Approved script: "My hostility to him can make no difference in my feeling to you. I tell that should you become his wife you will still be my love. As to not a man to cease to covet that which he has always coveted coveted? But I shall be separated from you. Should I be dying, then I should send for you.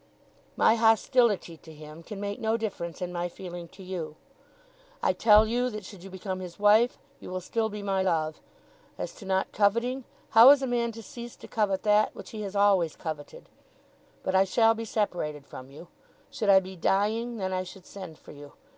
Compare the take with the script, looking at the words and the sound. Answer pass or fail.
fail